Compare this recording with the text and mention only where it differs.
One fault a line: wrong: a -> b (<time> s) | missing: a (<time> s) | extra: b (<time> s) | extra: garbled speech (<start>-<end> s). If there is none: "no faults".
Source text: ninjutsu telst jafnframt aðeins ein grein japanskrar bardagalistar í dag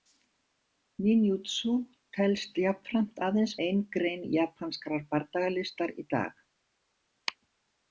no faults